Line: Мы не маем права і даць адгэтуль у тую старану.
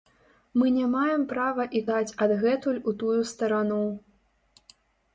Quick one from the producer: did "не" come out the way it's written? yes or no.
yes